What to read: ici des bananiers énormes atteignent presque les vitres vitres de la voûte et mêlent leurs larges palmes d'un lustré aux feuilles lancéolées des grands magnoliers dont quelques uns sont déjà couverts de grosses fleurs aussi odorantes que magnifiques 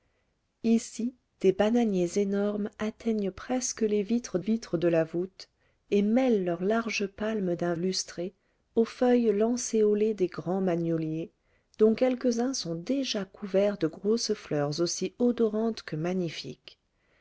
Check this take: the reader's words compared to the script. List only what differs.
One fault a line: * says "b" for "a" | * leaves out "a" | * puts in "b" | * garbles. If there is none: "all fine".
all fine